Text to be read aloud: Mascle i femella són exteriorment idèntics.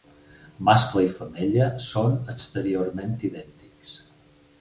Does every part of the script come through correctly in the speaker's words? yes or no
yes